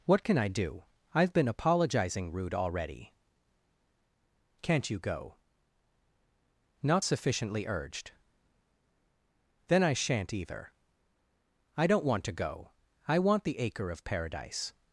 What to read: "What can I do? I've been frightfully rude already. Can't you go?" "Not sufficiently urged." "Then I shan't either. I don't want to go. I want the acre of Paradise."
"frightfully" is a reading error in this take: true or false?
true